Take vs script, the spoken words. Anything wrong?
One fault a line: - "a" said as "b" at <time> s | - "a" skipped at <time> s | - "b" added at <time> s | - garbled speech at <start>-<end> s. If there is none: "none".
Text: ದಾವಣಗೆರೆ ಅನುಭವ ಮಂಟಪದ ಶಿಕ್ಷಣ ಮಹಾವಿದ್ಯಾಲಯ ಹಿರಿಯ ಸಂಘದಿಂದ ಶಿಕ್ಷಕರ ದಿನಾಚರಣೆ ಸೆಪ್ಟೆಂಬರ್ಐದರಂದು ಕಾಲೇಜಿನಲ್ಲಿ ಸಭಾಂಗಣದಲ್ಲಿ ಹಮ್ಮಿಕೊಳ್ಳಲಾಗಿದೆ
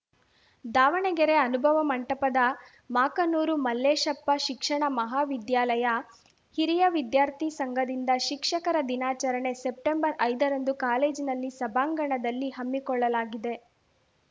- "ಮಾಕನೂರು ಮಲ್ಲೇಶಪ್ಪ" added at 2.9 s
- "ವಿದ್ಯಾರ್ಥಿ" added at 7.0 s